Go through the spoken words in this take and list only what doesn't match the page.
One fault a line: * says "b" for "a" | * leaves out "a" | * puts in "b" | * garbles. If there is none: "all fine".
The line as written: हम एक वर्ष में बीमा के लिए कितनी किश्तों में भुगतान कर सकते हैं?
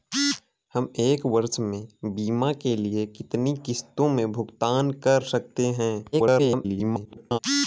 * garbles